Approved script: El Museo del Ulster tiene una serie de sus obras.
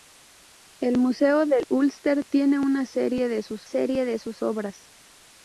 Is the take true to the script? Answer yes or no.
no